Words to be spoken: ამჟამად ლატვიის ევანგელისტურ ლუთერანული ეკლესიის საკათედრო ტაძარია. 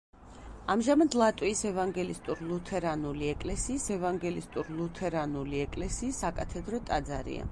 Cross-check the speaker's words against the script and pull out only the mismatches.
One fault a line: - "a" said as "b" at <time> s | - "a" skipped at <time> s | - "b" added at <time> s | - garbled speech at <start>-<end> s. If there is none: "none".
- "ევანგელისტურ ლუთერანული ეკლესიის" added at 4.0 s